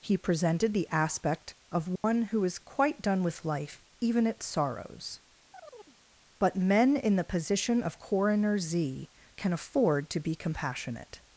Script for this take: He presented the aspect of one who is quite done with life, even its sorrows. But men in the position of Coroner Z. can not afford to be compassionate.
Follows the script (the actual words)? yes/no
no